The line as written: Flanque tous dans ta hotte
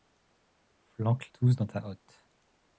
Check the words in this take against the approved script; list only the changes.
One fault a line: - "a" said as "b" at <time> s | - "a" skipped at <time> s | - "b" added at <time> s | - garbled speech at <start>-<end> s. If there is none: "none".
none